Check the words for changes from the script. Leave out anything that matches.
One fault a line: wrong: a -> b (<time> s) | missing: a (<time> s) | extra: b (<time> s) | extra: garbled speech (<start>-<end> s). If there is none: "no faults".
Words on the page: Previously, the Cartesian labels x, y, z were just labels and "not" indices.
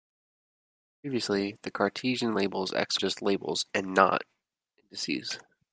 missing: y z were (3.0 s)